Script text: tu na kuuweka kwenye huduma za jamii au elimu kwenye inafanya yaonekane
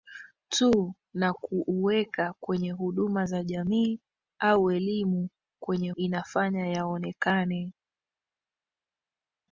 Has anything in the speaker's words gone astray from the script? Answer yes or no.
no